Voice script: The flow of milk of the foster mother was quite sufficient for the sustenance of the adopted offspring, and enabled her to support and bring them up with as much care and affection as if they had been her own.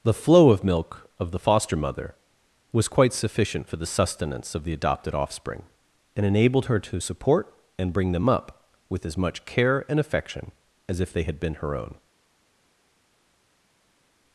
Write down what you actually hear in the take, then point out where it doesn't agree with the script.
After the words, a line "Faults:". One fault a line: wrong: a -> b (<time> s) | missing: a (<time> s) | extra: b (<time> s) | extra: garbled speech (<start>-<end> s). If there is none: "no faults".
The flow of milk of the foster mother was quite sufficient for the sustenance of the adopted offspring, and enabled her to support and bring them up with as much care and affection as if they had been her own.
Faults:
no faults